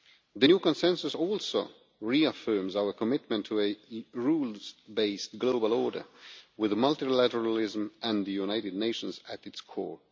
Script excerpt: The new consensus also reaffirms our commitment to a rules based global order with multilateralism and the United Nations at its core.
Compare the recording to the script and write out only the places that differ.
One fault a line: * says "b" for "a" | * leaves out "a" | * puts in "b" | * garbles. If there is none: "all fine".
all fine